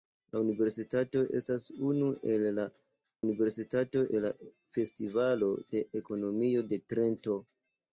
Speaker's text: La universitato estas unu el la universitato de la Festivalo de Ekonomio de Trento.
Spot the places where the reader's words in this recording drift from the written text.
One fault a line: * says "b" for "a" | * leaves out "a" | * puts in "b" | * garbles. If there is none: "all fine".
all fine